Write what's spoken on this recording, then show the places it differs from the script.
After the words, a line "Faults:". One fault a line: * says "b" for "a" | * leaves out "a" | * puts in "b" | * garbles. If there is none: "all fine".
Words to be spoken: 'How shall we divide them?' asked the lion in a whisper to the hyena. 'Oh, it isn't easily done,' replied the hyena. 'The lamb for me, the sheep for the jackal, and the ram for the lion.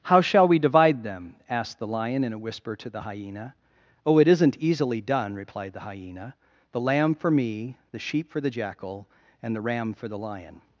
'How shall we divide them?' asked the lion in a whisper to the hyena. 'Oh, it isn't easily done,' replied the hyena. 'The lamb for me, the sheep for the jackal, and the ram for the lion.
Faults:
all fine